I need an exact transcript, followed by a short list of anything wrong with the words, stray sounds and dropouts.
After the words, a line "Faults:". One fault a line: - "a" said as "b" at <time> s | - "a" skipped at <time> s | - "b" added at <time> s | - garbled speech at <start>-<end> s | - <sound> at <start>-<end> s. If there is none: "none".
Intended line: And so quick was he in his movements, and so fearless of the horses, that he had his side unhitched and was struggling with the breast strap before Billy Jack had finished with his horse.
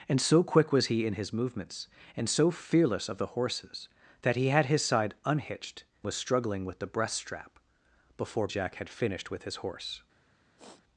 And so quick was he in his movements, and so fearless of the horses, that he had his side unhitched was struggling with the breast strap before Jack had finished with his horse.
Faults:
- "and" skipped at 5.8 s
- "Billy" skipped at 8.5 s
- sniff at 10.6-10.8 s